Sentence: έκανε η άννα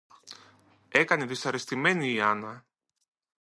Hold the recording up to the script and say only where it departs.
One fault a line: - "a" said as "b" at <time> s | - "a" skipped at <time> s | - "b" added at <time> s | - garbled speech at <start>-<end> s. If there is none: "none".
- "δυσαρεστημένη" added at 1.2 s